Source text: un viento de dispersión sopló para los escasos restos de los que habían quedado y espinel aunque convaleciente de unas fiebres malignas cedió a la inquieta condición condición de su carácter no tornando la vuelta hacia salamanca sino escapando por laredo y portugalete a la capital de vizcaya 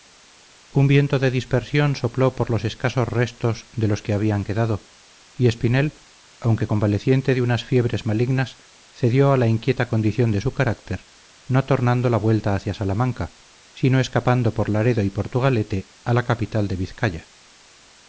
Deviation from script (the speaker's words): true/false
true